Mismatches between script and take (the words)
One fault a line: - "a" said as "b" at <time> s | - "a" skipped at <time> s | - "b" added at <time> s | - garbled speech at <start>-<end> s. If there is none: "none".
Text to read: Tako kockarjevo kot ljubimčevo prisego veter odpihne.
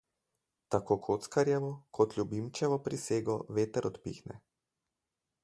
none